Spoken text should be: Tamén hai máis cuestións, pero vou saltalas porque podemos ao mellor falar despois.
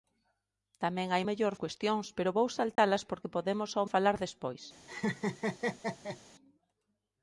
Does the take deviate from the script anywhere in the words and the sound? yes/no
yes